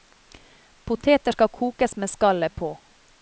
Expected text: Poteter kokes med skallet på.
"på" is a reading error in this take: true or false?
false